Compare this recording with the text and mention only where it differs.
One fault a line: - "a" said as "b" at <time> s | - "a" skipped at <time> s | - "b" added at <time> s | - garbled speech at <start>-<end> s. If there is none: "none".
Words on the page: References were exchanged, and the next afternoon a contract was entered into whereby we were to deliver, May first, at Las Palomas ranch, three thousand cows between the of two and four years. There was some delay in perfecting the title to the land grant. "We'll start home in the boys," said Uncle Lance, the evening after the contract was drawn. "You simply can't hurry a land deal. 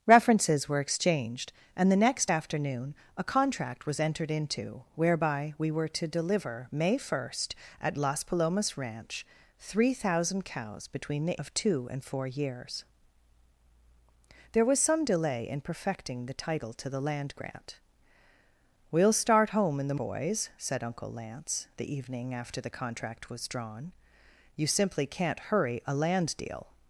none